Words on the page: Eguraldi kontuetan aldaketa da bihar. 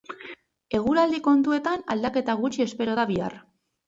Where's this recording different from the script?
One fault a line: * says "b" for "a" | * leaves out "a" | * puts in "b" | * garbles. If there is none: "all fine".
* puts in "gutxi espero"